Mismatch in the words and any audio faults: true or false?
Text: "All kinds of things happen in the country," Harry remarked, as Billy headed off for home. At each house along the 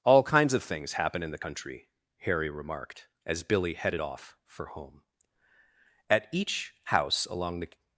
false